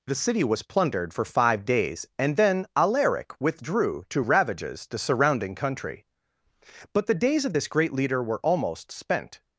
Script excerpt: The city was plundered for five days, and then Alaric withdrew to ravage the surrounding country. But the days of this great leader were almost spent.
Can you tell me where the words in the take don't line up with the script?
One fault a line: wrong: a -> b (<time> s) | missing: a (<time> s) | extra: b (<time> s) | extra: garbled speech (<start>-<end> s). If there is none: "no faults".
wrong: ravage -> ravages (4.2 s)